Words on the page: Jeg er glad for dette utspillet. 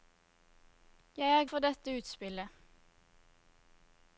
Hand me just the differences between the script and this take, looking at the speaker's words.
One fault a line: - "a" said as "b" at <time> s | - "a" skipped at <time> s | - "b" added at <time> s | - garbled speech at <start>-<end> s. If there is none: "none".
- "glad" skipped at 1.4 s